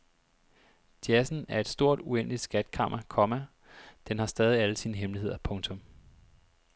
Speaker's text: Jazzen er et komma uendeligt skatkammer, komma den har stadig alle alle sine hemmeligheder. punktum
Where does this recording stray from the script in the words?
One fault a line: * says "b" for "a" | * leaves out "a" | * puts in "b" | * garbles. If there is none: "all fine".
* says "stort" for "komma"
* leaves out "alle"